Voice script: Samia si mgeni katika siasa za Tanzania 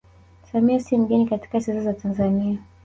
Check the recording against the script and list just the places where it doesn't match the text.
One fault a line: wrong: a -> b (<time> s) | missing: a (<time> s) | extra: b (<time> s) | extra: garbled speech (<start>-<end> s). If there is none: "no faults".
no faults